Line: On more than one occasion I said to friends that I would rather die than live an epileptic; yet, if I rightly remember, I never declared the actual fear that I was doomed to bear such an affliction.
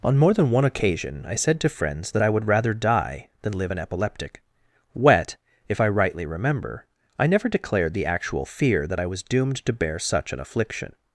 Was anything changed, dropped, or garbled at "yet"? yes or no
yes